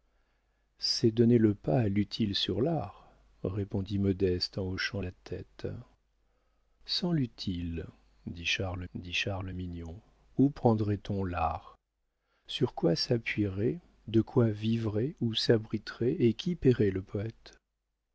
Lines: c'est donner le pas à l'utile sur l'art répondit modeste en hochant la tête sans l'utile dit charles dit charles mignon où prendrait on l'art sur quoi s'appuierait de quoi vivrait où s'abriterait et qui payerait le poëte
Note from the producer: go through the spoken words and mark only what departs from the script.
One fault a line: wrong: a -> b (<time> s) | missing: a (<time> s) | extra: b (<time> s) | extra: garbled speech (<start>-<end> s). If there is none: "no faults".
no faults